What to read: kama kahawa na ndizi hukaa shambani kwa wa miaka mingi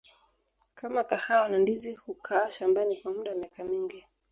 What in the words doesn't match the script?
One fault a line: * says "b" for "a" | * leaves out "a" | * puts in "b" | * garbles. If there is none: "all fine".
* puts in "muda"